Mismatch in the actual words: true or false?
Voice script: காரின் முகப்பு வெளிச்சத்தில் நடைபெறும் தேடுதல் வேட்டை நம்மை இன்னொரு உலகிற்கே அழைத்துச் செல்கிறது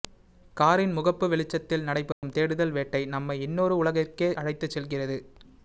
false